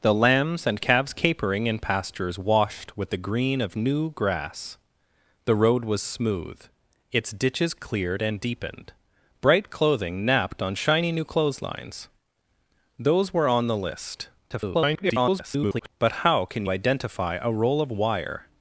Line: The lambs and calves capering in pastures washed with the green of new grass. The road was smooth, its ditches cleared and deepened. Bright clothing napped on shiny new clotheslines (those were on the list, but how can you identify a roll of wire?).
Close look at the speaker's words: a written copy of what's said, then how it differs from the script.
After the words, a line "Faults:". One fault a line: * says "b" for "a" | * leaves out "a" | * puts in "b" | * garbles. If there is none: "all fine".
The lambs and calves capering in pastures washed with the green of new grass. The road was smooth, its ditches cleared and deepened. Bright clothing napped on shiny new clotheslines (those were on the list, [garbled] but how can identify a roll of wire?).
Faults:
* garbles
* leaves out "you"